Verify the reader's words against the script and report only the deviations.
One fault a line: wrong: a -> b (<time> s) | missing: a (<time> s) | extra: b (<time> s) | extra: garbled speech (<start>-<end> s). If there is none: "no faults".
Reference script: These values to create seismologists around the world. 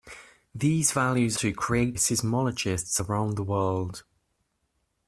no faults